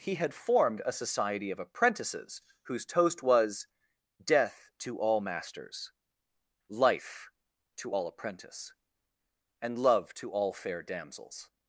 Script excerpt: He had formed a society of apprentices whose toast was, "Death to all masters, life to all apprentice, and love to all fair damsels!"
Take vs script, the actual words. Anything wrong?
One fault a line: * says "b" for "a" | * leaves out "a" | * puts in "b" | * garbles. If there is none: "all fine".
all fine